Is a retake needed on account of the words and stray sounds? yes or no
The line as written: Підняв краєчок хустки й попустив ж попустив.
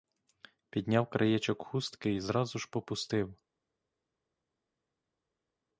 yes